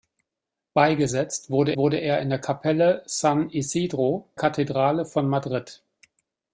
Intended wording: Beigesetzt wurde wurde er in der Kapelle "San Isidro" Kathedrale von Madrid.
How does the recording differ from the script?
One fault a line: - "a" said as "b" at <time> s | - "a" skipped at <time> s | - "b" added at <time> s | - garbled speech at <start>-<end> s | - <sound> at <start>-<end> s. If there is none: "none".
none